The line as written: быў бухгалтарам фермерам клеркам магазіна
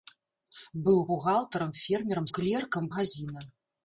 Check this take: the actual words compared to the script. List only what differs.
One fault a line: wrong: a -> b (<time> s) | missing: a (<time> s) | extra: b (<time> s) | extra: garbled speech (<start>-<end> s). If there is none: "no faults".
no faults